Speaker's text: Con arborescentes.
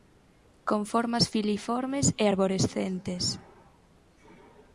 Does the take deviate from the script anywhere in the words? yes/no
yes